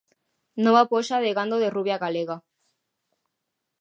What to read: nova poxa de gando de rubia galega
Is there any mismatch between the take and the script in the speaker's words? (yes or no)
no